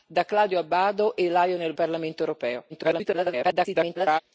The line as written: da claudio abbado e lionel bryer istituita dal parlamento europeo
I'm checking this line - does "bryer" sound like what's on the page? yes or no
no